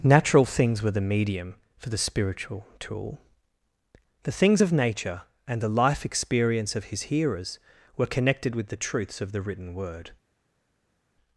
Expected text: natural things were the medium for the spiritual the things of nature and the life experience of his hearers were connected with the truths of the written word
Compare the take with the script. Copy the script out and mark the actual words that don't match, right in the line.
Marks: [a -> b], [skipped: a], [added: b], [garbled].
natural things were the medium for the spiritual [added: tool] the things of nature and the life experience of his hearers were connected with the truths of the written word